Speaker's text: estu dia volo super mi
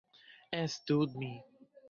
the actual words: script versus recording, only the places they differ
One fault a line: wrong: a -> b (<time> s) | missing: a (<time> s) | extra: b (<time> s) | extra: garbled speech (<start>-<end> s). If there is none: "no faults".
missing: dia volo super (1.0 s)